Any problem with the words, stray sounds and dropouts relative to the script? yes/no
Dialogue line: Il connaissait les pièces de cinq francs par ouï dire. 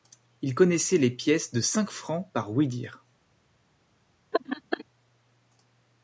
yes